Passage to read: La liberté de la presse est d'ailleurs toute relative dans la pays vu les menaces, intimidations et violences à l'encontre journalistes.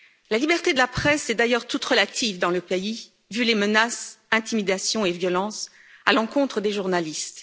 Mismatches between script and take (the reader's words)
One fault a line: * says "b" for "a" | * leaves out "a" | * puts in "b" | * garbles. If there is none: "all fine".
* says "le" for "la"
* puts in "des"